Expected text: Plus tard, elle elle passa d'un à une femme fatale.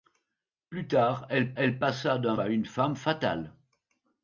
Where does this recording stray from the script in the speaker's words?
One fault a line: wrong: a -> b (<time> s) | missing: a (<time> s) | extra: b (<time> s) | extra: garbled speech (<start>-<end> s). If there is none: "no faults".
no faults